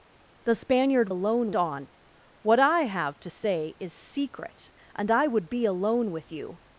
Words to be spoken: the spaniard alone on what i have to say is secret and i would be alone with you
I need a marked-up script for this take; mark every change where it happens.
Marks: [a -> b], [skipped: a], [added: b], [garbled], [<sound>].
the spaniard alone on what i have to say is secret and i would be alone with you